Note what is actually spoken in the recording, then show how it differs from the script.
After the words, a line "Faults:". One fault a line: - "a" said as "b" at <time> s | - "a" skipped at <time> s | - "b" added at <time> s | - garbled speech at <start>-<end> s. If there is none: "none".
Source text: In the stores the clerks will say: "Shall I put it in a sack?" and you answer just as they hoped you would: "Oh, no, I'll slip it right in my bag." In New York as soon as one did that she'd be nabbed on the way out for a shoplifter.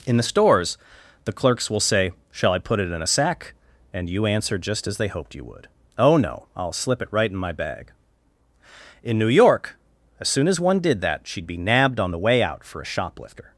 In the stores the clerks will say: "Shall I put it in a sack?" and you answer just as they hoped you would: "Oh, no, I'll slip it right in my bag." In New York as soon as one did that she'd be nabbed on the way out for a shoplifter.
Faults:
none